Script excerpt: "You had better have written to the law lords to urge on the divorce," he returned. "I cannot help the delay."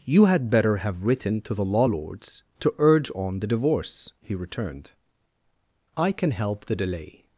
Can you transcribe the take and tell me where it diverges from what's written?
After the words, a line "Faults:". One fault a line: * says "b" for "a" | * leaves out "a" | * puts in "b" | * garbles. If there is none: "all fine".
"You had better have written to the law lords to urge on the divorce," he returned. "I can help the delay."
Faults:
* says "can" for "cannot"